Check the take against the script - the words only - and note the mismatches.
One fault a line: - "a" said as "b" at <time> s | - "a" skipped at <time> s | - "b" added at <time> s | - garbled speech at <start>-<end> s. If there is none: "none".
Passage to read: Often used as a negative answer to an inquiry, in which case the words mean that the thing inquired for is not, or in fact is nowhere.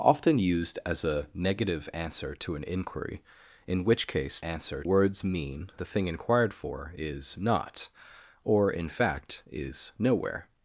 - "the" said as "answer" at 4.4 s
- "that" skipped at 5.7 s